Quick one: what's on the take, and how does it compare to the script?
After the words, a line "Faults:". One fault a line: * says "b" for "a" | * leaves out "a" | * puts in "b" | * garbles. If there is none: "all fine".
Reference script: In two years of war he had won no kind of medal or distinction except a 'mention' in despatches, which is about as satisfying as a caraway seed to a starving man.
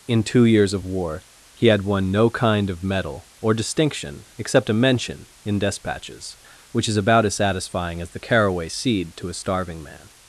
In two years of war he had won no kind of medal or distinction except a 'mention' in despatches, which is about as satisfying as the caraway seed to a starving man.
Faults:
* says "the" for "a"